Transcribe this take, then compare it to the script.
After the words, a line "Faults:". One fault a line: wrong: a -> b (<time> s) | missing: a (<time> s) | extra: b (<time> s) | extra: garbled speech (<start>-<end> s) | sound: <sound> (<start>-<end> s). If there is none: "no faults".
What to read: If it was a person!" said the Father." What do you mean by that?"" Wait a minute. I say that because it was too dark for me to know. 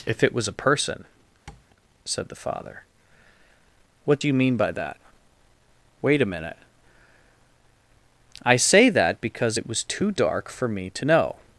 If it was a person!" said the Father." What do you mean by that?"" Wait a minute. I say that because it was too dark for me to know.
Faults:
sound: tap (1.5-1.7 s)